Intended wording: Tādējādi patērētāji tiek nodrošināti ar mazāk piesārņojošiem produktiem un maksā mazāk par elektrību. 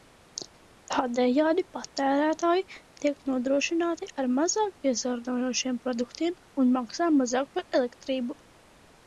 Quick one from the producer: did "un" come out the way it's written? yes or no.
yes